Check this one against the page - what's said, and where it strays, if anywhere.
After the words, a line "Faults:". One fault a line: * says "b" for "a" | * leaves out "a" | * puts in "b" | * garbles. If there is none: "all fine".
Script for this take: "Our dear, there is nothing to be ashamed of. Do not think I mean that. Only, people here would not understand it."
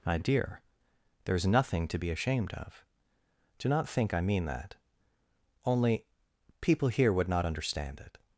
"My dear, there is nothing to be ashamed of. Do not think I mean that. Only, people here would not understand it."
Faults:
* says "My" for "Our"